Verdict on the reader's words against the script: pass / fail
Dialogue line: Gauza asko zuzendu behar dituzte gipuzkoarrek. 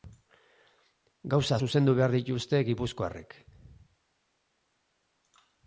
fail